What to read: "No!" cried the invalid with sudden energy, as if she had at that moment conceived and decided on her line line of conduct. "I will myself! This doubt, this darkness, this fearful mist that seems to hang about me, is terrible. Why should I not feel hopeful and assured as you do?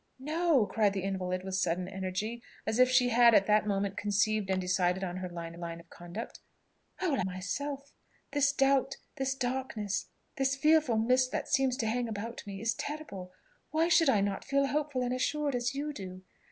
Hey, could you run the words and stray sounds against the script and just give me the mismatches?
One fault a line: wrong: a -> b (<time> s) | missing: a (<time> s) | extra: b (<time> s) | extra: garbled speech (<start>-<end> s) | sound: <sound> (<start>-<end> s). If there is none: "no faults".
no faults